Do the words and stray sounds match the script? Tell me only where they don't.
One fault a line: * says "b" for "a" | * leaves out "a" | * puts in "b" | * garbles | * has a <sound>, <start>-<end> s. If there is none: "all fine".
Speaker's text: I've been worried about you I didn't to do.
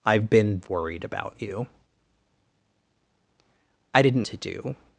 all fine